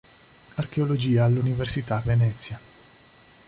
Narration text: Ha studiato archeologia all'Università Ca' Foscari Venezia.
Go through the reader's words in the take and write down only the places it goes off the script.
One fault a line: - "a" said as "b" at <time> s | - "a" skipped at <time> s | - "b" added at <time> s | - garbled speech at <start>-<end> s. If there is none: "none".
- "studiato" skipped at 0.6 s
- "Ca Foscari" skipped at 2.0 s